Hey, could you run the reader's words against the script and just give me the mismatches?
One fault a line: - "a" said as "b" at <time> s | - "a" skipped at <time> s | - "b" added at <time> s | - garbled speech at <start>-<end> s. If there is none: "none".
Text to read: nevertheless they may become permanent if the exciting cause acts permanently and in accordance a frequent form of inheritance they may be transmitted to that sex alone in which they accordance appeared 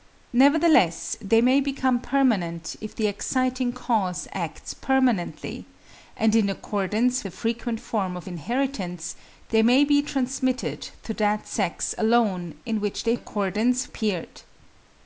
none